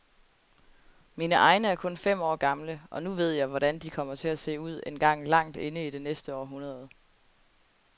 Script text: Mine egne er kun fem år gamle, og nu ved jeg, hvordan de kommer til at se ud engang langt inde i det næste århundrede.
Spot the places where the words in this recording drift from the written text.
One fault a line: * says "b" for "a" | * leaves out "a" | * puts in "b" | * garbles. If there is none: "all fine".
all fine